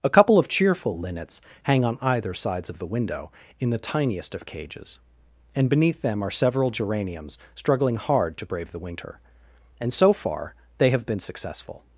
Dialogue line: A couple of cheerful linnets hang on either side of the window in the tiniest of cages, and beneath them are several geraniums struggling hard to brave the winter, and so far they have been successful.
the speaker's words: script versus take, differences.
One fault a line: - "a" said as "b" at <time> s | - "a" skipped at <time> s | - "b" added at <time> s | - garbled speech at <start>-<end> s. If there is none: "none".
- "side" said as "sides" at 2.3 s